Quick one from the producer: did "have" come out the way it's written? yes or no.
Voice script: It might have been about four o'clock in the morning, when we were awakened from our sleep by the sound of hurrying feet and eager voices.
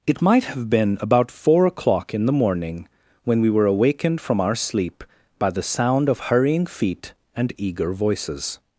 yes